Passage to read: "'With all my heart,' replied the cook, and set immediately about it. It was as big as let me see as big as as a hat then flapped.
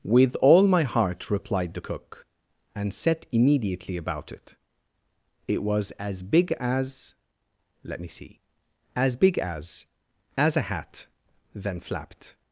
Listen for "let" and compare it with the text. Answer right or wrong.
right